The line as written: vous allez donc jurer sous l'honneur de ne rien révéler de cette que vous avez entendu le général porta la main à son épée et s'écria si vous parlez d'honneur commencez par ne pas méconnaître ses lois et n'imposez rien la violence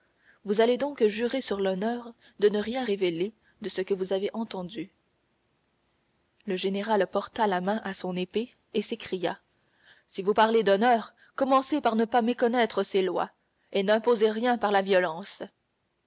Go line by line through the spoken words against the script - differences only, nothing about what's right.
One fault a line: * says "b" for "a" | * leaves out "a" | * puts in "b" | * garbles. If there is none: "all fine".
* says "sur" for "sous"
* says "ce" for "cette"
* puts in "par"